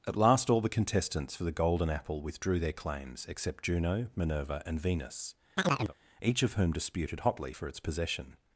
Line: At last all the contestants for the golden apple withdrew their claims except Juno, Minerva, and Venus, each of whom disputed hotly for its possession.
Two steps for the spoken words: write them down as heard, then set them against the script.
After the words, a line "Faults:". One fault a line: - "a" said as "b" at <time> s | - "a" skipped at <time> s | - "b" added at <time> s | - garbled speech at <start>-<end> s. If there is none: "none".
At last all the contestants for the golden apple withdrew their claims except Juno, Minerva, and Venus, each of whom disputed hotly for its possession.
Faults:
none